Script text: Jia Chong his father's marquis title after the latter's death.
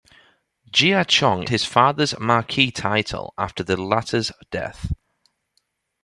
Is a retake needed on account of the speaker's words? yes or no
no